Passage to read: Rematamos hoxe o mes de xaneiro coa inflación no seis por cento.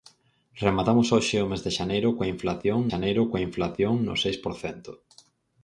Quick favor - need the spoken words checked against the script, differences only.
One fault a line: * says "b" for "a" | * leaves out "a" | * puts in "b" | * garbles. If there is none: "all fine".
* puts in "xaneiro coa inflación"